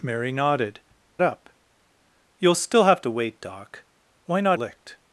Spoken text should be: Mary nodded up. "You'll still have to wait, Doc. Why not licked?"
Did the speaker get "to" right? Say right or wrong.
right